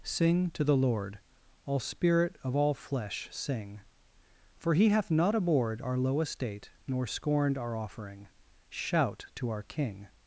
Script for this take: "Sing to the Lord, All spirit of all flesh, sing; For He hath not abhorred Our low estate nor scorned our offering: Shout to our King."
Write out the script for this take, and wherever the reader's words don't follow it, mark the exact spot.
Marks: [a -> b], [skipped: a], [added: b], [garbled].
"Sing to the Lord, All spirit of all flesh, sing; For He hath not abhorred Our low estate nor scorned our offering: Shout to our King."